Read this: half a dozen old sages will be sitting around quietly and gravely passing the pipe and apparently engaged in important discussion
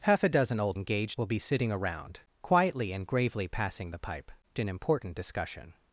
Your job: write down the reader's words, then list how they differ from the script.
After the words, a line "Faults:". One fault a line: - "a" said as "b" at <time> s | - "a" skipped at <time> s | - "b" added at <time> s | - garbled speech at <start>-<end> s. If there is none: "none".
half a dozen old engaged will be sitting around quietly and gravely passing the pipe in important discussion
Faults:
- "sages" said as "engaged" at 0.7 s
- "and apparently engaged" skipped at 4.3 s